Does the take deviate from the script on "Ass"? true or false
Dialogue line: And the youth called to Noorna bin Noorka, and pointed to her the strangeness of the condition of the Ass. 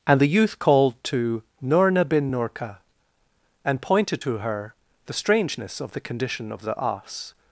false